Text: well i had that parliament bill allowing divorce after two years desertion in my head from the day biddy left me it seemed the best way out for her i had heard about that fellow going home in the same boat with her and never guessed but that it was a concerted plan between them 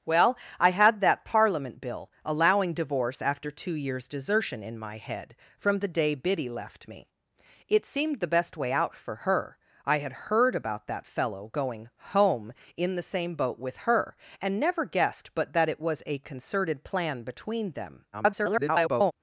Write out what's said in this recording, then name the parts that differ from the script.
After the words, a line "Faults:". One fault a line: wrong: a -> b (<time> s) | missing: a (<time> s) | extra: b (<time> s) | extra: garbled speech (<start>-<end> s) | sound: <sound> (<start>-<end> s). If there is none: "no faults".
well i had that parliament bill allowing divorce after two years desertion in my head from the day biddy left me it seemed the best way out for her i had heard about that fellow going home in the same boat with her and never guessed but that it was a concerted plan between them [garbled]
Faults:
extra: garbled speech (18.1-19.1 s)